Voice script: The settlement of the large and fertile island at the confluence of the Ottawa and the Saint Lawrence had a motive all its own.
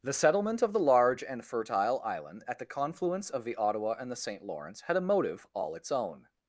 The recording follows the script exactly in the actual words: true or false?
true